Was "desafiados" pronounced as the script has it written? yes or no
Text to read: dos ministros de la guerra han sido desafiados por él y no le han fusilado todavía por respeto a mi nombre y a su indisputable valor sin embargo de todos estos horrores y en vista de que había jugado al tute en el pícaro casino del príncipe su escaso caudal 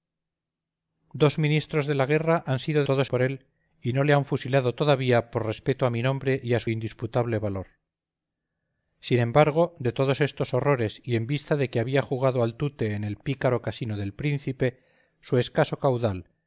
no